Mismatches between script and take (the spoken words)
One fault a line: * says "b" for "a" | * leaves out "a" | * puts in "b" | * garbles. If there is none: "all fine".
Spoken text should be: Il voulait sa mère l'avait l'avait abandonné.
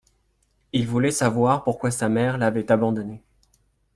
* puts in "savoir pourquoi"
* leaves out "l'avait"